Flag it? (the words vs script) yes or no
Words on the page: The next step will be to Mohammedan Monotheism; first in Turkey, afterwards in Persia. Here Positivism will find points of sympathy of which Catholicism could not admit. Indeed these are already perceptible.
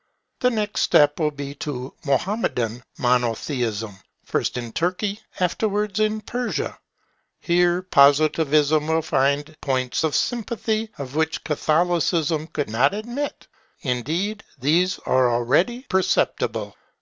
no